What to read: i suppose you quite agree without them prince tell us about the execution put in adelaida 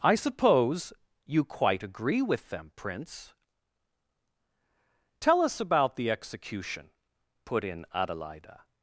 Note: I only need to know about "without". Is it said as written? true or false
false